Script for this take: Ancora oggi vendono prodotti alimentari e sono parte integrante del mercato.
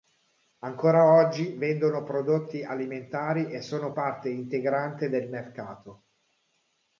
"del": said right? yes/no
yes